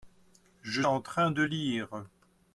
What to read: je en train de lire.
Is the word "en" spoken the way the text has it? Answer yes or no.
yes